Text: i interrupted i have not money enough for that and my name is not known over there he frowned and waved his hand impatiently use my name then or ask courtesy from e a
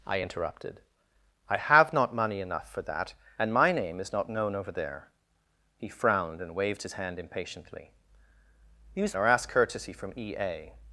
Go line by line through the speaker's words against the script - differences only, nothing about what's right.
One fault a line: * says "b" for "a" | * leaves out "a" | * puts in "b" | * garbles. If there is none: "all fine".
* leaves out "my name then"